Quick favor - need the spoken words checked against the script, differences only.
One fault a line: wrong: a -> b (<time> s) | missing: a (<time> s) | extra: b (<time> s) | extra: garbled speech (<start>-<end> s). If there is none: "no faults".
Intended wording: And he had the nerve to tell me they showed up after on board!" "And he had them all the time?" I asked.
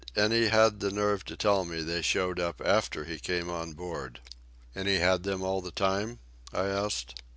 extra: he came (3.0 s)